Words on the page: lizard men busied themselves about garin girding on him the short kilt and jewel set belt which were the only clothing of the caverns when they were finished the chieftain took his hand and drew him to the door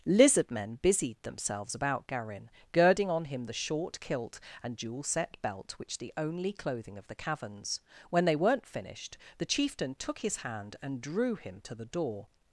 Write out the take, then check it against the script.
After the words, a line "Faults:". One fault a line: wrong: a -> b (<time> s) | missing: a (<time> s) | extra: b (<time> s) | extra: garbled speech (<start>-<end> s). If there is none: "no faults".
lizard men busied themselves about garin girding on him the short kilt and jewel set belt which the only clothing of the caverns when they weren't finished the chieftain took his hand and drew him to the door
Faults:
missing: were (6.0 s)
wrong: were -> weren't (8.4 s)